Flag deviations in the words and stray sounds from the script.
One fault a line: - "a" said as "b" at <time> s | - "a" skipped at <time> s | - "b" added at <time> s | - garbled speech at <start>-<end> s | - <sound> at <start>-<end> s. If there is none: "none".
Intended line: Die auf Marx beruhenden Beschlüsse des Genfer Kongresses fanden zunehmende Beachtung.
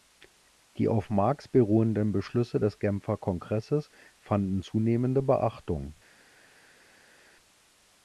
none